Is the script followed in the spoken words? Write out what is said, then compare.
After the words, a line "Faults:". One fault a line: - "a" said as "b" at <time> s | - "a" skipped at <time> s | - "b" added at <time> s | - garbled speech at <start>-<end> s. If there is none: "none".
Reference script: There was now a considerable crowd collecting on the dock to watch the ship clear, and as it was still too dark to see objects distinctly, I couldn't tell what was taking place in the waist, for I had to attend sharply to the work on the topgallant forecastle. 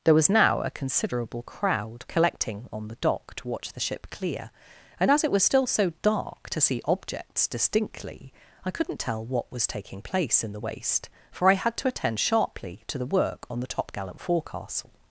There was now a considerable crowd collecting on the dock to watch the ship clear, and as it was still so dark to see objects distinctly, I couldn't tell what was taking place in the waist, for I had to attend sharply to the work on the topgallant forecastle.
Faults:
- "too" said as "so" at 5.7 s